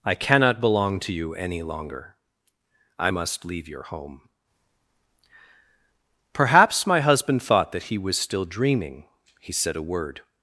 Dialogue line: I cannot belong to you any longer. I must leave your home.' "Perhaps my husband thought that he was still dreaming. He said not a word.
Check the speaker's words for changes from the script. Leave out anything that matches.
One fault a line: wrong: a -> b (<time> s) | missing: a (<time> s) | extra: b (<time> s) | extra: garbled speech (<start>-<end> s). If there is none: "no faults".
missing: not (9.7 s)